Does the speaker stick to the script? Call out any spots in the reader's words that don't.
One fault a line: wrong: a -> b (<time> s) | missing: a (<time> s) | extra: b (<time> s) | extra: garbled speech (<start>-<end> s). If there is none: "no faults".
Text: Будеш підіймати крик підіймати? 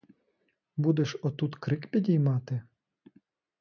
wrong: підіймати -> отут (1.2 s)